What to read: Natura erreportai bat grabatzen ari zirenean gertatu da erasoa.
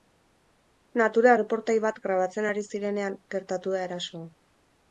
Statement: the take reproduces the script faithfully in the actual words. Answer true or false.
true